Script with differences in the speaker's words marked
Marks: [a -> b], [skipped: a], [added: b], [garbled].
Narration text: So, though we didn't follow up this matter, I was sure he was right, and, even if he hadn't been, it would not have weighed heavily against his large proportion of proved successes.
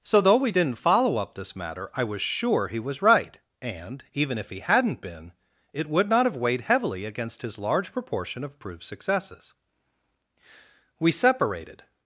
So, though we didn't follow up this matter, I was sure he was right, and, even if he hadn't been, it would not have weighed heavily against his large proportion of proved successes. [added: We separated]